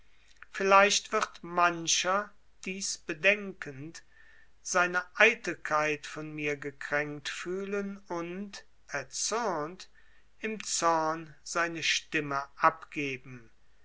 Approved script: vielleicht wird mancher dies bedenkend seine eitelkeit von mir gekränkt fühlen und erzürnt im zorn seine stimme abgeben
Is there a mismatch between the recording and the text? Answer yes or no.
no